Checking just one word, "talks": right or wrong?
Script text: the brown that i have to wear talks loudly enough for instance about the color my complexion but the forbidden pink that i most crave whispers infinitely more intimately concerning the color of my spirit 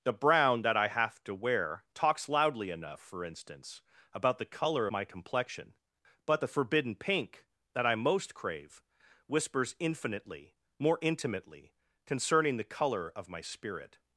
right